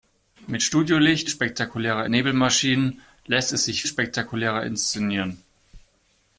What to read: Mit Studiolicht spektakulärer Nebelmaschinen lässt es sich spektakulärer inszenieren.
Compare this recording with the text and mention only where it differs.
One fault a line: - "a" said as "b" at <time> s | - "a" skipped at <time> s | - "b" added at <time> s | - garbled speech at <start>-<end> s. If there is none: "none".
none